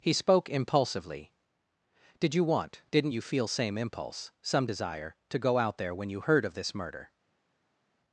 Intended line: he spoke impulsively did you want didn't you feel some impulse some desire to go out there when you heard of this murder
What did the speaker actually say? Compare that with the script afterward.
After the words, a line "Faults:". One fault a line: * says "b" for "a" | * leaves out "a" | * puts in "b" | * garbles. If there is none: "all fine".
he spoke impulsively did you want didn't you feel same impulse some desire to go out there when you heard of this murder
Faults:
* says "same" for "some"